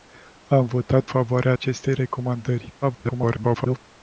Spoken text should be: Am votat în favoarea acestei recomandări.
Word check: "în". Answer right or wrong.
wrong